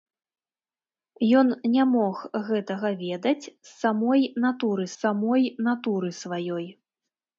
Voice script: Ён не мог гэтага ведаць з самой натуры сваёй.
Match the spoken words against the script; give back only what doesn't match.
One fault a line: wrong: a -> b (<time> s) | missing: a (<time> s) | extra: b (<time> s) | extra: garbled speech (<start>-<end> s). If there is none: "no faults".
extra: самой натуры (5.0 s)